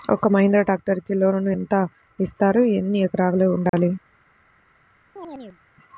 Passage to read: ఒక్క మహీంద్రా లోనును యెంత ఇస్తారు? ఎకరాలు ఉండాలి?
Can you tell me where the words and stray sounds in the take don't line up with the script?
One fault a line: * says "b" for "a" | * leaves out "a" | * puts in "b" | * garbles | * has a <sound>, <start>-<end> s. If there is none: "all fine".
* puts in "ట్రాక్టర్కి"
* puts in "ఎన్ని"
* has a dropout, 3.7-3.7 s
* has a chirp, 5.2-5.6 s